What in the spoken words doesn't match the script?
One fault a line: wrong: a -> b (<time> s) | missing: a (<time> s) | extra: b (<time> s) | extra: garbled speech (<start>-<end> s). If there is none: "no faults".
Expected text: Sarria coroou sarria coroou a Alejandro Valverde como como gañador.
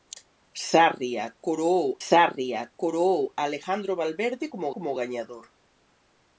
no faults